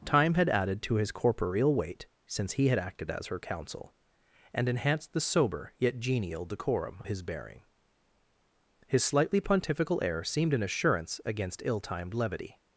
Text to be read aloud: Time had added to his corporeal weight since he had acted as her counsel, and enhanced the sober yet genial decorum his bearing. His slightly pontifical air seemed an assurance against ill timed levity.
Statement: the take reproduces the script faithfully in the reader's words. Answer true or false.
true